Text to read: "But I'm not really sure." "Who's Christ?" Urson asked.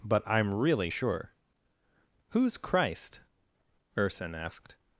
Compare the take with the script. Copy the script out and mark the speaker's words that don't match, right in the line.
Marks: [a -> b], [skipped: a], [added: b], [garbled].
"But I'm [skipped: not] really sure." "Who's Christ?" Urson asked.